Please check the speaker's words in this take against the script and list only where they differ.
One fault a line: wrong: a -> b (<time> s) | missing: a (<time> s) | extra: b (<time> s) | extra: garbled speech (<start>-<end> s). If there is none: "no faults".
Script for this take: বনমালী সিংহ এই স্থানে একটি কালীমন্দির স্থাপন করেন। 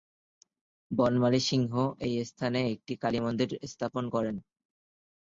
no faults